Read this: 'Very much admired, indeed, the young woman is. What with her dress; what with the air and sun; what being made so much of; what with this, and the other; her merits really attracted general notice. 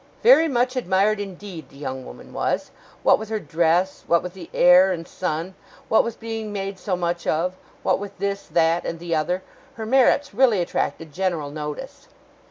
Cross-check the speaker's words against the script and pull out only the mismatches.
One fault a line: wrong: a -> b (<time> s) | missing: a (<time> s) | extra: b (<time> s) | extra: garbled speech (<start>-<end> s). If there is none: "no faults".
wrong: is -> was (2.3 s)
extra: with (6.0 s)
extra: that (8.5 s)